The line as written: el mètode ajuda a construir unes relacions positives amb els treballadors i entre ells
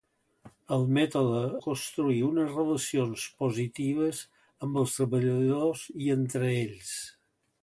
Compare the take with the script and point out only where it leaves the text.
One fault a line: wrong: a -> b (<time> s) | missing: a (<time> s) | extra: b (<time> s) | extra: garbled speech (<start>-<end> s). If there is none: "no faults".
missing: ajuda (1.4 s)